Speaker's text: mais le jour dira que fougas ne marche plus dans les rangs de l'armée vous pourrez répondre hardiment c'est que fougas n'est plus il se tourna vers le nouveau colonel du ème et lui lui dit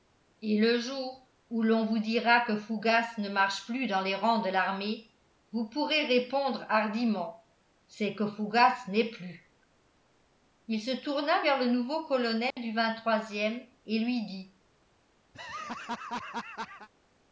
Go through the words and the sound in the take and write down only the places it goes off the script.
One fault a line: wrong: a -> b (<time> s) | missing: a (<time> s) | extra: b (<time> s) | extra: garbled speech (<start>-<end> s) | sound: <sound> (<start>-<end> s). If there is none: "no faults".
wrong: mais -> et (0.4 s)
extra: où l'on vous (1.5 s)
sound: dropout (12.5-12.6 s)
missing: lui (14.3 s)
sound: laugh (15.3-16.9 s)